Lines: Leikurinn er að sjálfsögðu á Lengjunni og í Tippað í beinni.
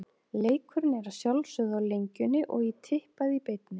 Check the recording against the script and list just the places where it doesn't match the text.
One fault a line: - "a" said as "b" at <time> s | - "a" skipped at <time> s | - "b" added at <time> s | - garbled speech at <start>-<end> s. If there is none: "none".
none